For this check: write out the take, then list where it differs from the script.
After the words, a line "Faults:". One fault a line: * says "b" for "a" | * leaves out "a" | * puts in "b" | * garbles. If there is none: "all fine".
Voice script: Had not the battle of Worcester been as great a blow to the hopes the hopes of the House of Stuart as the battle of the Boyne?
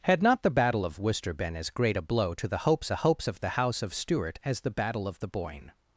Had not the battle of Worcester been as great a blow to the hopes the hopes of the House of Stuart as the battle of the Boyne?
Faults:
all fine